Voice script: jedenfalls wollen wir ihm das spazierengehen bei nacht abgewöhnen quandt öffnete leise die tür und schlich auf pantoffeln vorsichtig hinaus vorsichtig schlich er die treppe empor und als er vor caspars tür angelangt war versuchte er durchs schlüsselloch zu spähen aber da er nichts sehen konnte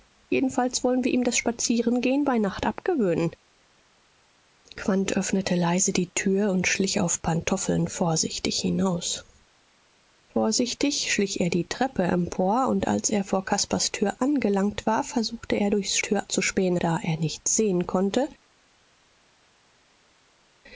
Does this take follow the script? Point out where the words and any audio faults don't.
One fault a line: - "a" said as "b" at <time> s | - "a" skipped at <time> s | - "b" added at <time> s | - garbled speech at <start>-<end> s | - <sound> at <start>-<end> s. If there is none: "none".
- "schlüsselloch" said as "tür" at 16.0 s
- "aber" skipped at 16.8 s